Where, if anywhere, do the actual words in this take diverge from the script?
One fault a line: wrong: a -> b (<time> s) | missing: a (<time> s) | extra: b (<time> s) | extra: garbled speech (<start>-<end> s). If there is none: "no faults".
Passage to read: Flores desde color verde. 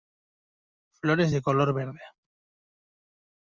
wrong: desde -> de (1.3 s)